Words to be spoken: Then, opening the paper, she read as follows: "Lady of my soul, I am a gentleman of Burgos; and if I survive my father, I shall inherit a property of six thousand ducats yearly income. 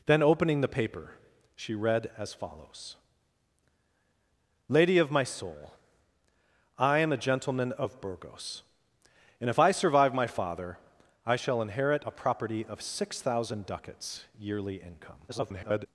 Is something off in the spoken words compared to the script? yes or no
yes